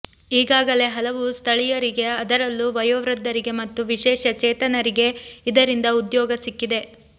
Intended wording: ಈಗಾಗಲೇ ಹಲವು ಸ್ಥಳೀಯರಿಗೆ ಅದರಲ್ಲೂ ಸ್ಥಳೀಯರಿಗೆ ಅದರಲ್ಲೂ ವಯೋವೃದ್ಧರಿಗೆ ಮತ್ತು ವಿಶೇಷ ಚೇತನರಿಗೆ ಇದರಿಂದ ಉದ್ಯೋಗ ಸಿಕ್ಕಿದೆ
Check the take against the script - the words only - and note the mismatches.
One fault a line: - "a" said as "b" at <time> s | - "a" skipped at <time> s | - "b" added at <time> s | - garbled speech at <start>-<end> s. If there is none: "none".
- "ಸ್ಥಳೀಯರಿಗೆ ಅದರಲ್ಲೂ" skipped at 2.7 s